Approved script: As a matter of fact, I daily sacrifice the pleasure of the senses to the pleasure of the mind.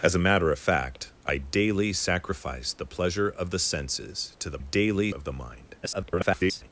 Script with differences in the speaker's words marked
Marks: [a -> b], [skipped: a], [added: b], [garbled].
As a matter of fact, I daily sacrifice the pleasure of the senses to the [pleasure -> daily] of the mind. [garbled]